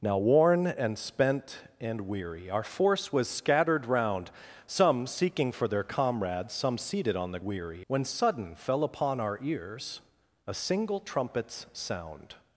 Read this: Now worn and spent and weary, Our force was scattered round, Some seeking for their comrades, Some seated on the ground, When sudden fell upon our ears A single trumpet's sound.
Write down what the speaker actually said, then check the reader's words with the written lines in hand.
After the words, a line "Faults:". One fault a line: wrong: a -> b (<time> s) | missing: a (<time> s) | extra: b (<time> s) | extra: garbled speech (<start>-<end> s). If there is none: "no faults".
Now worn and spent and weary, Our force was scattered round, Some seeking for their comrades, Some seated on the weary, When sudden fell upon our ears A single trumpet's sound.
Faults:
wrong: ground -> weary (7.4 s)